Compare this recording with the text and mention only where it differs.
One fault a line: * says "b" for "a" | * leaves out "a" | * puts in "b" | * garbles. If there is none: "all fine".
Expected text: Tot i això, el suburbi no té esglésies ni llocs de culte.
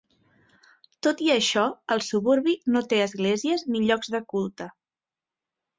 all fine